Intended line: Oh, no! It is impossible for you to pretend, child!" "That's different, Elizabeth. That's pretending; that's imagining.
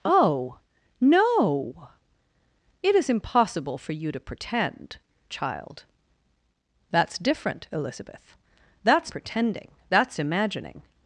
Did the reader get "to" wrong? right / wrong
right